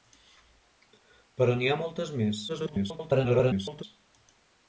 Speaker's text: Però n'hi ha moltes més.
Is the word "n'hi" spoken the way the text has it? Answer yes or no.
yes